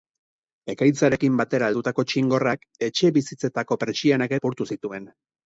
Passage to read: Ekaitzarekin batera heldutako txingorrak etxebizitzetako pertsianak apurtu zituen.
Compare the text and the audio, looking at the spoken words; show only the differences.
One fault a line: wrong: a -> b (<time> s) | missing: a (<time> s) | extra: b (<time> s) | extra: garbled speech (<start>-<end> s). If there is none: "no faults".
no faults